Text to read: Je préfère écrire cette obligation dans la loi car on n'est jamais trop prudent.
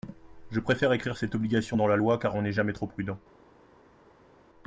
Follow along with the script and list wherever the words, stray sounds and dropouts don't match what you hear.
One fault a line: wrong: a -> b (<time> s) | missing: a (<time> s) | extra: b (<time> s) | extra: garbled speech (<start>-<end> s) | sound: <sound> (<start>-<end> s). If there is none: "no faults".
no faults